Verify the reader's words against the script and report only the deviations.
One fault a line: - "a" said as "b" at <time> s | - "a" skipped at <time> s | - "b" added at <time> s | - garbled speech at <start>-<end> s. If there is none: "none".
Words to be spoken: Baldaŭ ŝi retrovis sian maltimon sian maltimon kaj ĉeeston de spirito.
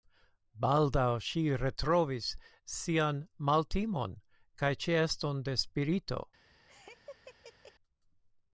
- "sian maltimon" skipped at 4.2 s